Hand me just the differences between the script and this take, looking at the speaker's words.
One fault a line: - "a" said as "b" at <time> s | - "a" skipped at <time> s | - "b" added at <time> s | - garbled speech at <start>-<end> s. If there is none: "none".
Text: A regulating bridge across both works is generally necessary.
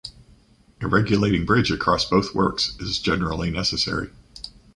none